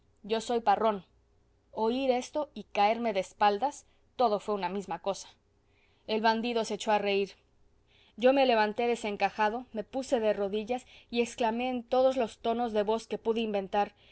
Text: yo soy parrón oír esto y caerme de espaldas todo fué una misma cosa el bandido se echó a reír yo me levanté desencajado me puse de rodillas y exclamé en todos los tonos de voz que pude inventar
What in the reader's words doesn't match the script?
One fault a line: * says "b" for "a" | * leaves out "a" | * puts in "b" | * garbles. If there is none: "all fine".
all fine